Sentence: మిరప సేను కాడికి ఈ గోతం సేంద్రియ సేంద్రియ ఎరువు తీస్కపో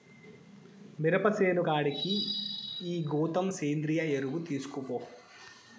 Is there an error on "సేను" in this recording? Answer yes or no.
no